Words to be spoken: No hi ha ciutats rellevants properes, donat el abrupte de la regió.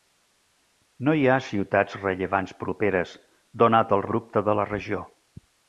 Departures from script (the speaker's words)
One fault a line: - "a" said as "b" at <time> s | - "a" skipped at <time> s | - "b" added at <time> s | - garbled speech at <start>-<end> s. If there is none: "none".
none